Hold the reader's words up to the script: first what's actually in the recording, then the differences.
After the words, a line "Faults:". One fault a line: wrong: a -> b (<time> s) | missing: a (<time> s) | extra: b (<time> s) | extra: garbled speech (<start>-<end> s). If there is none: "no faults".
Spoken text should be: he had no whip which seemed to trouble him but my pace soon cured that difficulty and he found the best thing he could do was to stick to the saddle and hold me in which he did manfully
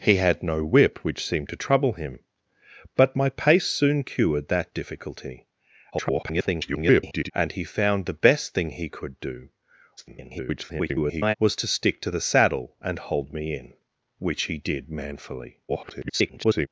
he had no whip which seemed to trouble him but my pace soon cured that difficulty [garbled] and he found the best thing he could do [garbled] was to stick to the saddle and hold me in which he did manfully [garbled]
Faults:
extra: garbled speech (5.9-7.3 s)
extra: garbled speech (10.0-11.3 s)
extra: garbled speech (15.7-16.7 s)